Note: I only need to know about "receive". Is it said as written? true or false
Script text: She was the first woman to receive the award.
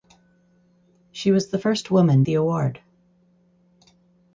false